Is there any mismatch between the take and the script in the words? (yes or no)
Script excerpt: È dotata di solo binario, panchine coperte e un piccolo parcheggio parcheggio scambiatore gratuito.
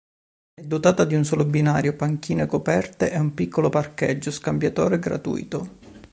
yes